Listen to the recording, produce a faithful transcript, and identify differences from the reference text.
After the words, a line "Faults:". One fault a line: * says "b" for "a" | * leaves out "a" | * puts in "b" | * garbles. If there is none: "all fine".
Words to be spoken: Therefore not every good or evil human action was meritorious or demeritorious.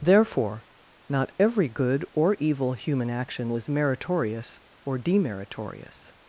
Therefore not every good or evil human action was meritorious or demeritorious.
Faults:
all fine